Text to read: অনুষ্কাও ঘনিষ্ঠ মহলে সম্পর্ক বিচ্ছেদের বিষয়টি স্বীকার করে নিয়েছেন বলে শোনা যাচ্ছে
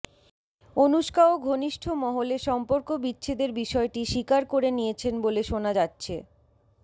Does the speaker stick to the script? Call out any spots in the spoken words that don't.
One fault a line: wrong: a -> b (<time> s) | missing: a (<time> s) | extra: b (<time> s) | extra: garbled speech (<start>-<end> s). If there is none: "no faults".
no faults